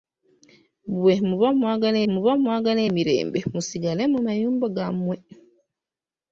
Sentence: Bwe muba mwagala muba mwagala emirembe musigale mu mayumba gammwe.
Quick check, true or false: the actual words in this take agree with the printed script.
true